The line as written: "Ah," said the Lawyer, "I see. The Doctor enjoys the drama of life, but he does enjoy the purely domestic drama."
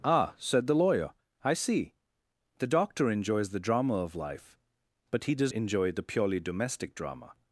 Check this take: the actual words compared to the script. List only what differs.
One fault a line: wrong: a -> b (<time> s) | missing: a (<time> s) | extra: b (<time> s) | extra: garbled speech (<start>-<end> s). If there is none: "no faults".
no faults